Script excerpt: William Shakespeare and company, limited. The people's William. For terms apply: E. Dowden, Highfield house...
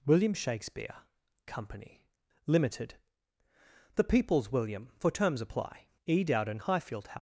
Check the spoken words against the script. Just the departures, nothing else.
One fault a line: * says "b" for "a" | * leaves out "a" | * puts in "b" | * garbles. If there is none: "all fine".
* leaves out "and"